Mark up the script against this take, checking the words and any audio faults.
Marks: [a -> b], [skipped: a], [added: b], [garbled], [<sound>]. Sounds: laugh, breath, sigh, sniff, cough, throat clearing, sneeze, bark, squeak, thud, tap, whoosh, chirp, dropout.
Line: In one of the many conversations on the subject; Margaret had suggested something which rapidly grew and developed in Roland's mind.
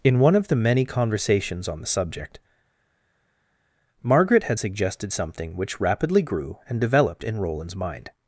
In one of the many conversations on the subject; Margaret had suggested something which rapidly grew and developed in Roland's mind.